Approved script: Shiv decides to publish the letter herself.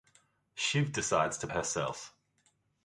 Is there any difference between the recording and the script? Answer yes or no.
yes